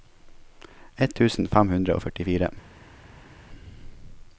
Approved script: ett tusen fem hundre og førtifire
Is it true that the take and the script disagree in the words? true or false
false